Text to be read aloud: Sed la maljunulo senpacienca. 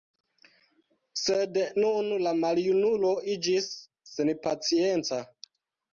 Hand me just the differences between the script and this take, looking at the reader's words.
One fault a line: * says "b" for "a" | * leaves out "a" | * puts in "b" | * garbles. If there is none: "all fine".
* puts in "nun"
* puts in "iĝis"